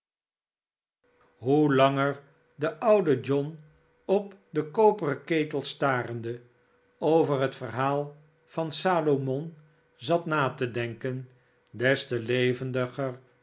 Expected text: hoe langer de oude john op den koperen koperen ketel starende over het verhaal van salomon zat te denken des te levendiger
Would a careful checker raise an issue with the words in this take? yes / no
yes